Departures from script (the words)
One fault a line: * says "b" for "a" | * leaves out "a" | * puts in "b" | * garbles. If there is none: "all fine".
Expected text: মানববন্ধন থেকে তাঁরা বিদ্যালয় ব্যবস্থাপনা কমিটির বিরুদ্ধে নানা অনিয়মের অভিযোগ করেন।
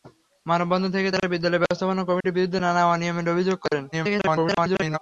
* garbles